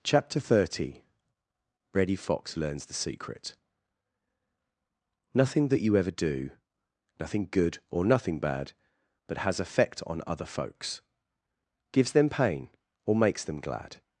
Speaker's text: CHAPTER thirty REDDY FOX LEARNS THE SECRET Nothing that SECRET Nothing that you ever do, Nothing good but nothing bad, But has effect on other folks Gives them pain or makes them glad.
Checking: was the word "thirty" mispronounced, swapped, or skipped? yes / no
no